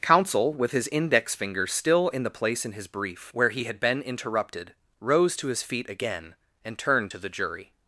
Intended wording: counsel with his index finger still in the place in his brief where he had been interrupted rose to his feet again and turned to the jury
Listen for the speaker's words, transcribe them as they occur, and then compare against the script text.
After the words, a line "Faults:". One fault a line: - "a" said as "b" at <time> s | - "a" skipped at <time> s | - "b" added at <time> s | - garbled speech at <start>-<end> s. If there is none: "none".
counsel with his index finger still in the place in his brief where he had been interrupted rose to his feet again and turned to the jury
Faults:
none